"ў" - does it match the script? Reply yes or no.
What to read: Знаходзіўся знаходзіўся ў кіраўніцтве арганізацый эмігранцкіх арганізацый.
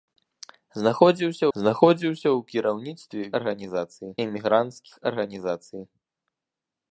yes